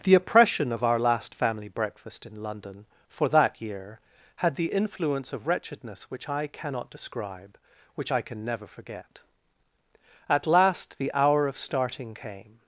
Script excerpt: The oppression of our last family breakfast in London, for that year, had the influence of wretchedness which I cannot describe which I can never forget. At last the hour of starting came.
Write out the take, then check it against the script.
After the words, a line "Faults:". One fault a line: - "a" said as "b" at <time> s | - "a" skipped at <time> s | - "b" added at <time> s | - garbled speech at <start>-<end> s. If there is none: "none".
The oppression of our last family breakfast in London, for that year, had the influence of wretchedness which I cannot describe which I can never forget. At last the hour of starting came.
Faults:
none